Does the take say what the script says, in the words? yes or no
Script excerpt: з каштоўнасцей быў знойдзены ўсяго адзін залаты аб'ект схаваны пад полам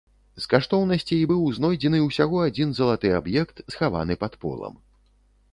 yes